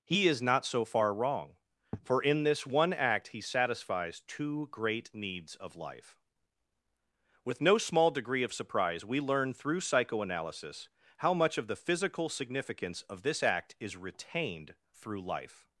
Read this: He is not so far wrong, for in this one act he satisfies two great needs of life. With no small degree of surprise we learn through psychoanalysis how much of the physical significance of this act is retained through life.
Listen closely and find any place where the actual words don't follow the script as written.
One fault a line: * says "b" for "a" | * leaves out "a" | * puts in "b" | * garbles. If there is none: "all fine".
all fine